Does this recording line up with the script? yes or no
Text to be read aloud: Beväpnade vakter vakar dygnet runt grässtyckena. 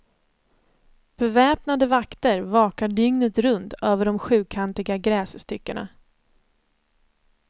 no